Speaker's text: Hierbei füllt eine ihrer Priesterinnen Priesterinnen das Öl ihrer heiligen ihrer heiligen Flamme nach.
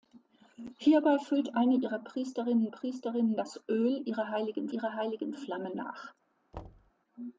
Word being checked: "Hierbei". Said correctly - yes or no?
yes